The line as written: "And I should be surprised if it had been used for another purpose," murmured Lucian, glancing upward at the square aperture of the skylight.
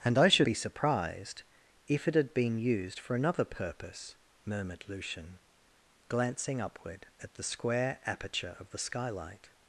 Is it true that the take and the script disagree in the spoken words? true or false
false